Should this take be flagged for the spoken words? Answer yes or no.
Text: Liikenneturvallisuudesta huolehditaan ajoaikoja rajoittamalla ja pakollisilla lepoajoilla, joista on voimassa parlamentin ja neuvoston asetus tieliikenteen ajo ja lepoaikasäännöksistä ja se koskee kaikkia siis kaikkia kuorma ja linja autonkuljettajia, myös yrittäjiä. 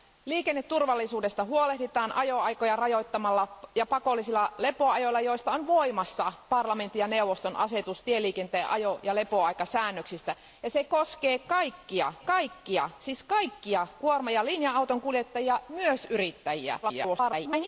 yes